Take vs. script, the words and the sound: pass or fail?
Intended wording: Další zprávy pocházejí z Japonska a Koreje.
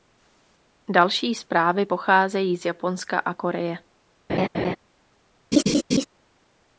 fail